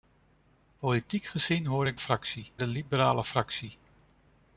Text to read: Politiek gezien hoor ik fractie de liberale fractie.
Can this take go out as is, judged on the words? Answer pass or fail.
pass